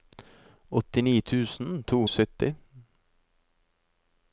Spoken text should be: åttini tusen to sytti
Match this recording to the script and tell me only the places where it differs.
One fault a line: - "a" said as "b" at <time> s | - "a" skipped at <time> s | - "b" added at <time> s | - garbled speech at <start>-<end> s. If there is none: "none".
none